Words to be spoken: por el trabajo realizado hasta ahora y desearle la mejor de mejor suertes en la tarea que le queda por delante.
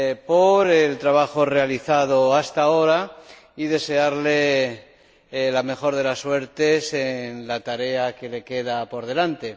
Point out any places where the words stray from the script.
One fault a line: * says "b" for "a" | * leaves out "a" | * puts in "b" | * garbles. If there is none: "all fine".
* says "las" for "mejor"